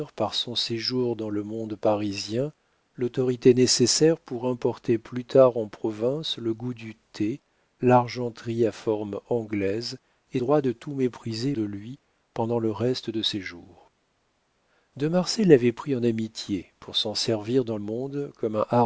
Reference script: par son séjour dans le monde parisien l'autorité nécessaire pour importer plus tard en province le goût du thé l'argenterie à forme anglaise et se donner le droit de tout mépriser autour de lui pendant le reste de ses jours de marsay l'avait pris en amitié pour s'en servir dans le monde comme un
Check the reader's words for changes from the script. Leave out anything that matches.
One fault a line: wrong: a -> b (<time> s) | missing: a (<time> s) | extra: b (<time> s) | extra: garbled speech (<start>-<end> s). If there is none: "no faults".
missing: se donner le (10.4 s)
missing: autour (11.6 s)
missing: le (17.8 s)